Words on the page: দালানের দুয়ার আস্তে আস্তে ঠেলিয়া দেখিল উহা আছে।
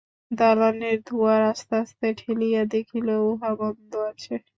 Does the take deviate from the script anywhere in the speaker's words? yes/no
yes